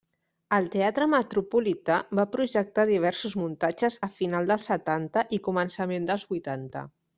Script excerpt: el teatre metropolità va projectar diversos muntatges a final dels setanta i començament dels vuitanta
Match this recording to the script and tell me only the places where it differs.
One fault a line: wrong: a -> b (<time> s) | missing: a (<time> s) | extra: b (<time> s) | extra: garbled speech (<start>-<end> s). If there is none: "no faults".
no faults